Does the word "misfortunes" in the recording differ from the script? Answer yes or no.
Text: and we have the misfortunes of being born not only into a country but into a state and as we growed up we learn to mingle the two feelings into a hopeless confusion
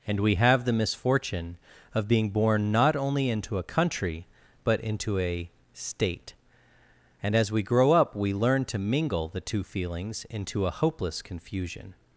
yes